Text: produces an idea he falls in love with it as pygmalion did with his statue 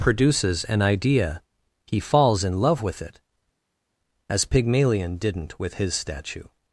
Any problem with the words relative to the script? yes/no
yes